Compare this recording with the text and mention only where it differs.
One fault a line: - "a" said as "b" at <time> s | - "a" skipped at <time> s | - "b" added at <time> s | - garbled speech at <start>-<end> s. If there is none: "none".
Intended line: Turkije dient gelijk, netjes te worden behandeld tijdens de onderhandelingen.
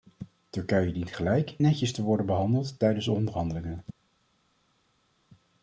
none